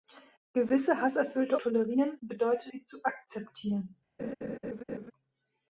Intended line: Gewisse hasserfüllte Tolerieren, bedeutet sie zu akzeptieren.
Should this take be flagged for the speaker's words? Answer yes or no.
no